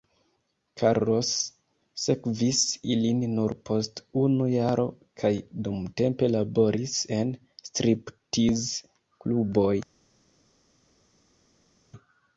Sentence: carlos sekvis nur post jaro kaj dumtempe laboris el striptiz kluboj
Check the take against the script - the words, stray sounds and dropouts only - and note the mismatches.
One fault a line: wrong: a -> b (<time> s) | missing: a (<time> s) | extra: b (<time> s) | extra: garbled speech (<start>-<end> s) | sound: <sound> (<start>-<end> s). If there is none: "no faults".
extra: ilin (3.0 s)
extra: unu (4.2 s)
wrong: el -> en (7.2 s)